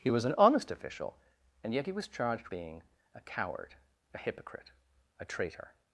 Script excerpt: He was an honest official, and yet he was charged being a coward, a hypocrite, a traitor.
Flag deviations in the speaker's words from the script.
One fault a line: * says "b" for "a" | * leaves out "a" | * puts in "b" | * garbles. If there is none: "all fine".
all fine